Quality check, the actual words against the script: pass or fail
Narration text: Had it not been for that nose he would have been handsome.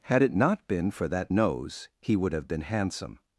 pass